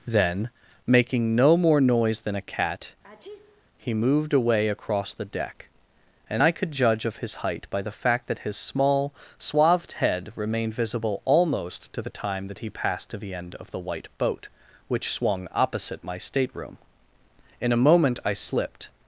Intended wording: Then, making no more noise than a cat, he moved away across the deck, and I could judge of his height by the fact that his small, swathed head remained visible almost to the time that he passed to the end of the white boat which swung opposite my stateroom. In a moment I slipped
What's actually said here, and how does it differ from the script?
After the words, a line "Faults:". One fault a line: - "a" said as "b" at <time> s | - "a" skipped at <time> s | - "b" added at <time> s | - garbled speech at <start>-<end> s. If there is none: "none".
Then, making no more noise than a cat, he moved away across the deck, and I could judge of his height by the fact that his small, swathed head remained visible almost to the time that he passed to the end of the white boat which swung opposite my stateroom. In a moment I slipped
Faults:
none